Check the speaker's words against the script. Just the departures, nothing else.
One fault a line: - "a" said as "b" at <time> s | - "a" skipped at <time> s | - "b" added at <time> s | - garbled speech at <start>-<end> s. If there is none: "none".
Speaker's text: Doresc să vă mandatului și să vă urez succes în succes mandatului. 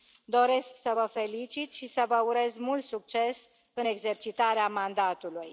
- "mandatului" said as "felicit" at 1.1 s
- "mult" added at 2.6 s
- "succes" said as "exercitarea" at 3.8 s